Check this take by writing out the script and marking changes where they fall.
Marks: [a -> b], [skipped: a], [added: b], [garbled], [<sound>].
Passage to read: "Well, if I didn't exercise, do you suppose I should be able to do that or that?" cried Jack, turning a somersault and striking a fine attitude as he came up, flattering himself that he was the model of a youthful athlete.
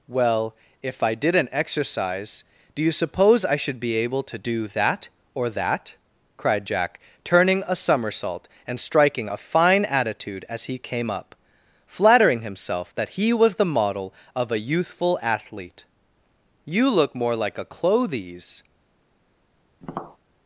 "Well, if I didn't exercise, do you suppose I should be able to do that or that?" cried Jack, turning a somersault and striking a fine attitude as he came up, flattering himself that he was the model of a youthful athlete. [added: You look more like a clothes] [tap]